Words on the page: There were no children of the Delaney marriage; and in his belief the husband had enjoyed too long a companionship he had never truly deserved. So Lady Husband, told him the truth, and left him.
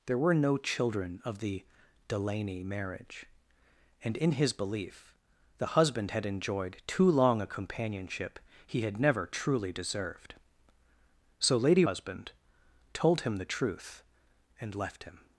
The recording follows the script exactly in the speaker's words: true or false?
true